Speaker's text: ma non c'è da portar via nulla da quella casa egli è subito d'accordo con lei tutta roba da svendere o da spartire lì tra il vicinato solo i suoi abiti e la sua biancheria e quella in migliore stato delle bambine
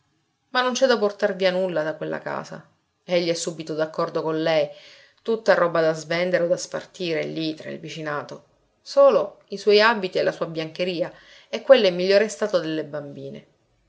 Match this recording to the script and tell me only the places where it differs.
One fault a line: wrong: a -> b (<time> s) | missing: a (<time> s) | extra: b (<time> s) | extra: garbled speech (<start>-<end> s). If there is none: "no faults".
no faults